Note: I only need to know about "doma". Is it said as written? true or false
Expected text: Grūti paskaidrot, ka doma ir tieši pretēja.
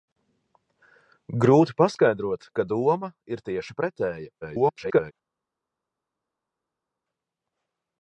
true